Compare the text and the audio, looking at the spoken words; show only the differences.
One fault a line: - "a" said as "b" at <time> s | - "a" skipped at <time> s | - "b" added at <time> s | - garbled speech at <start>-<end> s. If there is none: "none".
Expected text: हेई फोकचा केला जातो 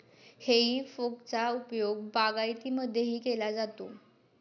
- "उपयोग बागायतीमध्येही" added at 1.5 s